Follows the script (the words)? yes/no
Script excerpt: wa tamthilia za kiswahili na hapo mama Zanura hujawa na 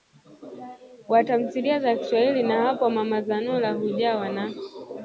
yes